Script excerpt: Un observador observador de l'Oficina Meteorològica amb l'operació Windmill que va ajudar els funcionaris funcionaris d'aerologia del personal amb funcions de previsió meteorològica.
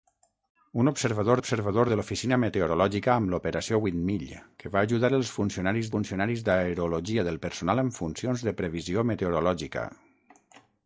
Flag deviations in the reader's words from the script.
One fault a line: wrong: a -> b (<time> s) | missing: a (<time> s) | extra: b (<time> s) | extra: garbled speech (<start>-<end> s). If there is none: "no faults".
no faults